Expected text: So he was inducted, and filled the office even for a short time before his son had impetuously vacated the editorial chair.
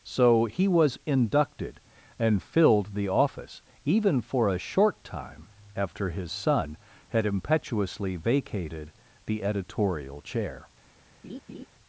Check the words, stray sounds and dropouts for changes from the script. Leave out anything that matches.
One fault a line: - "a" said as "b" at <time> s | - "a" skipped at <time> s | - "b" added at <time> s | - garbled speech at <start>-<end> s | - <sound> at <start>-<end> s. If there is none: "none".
- "before" said as "after" at 5.7 s
- laugh at 11.2-11.7 s